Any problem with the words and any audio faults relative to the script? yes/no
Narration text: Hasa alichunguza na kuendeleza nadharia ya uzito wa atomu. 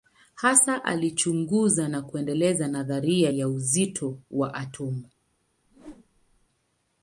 yes